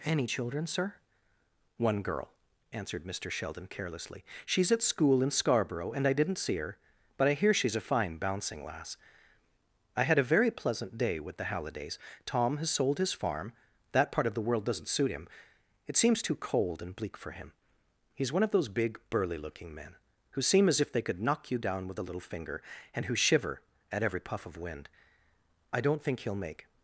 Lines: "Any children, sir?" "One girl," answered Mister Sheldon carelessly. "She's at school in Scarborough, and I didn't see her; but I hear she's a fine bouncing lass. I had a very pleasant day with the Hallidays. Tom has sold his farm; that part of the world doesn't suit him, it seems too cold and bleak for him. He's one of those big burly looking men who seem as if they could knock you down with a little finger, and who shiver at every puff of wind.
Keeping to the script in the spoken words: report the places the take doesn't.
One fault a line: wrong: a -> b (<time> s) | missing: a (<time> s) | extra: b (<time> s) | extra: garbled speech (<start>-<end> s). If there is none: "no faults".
extra: I don't think he'll make (25.7 s)